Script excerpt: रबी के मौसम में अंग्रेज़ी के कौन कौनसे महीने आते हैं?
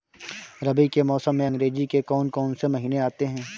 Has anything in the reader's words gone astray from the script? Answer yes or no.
no